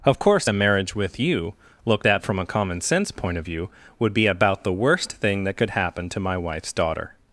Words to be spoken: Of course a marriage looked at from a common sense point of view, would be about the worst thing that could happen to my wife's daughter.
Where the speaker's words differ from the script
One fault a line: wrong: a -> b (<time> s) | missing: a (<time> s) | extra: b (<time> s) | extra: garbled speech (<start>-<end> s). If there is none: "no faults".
extra: with you (0.9 s)